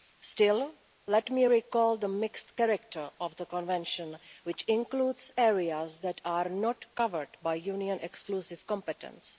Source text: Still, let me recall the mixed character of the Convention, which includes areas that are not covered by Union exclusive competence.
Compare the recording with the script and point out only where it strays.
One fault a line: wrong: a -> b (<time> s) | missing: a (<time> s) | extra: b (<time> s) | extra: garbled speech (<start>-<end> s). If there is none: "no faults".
no faults